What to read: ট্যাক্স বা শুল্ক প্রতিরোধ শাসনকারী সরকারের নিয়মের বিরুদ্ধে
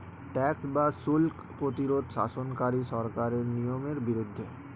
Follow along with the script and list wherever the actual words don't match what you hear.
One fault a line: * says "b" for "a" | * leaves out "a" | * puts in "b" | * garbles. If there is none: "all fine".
all fine